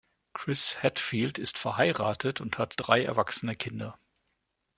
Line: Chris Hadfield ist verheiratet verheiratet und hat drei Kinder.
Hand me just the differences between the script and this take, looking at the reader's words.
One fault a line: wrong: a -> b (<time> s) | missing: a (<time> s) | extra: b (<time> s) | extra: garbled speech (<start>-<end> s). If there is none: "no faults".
missing: verheiratet (2.4 s)
extra: erwachsene (3.0 s)